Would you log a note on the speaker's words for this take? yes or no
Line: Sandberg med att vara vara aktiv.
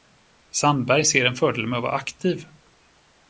yes